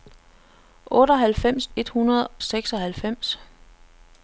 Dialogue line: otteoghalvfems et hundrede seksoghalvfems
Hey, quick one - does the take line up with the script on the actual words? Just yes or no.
yes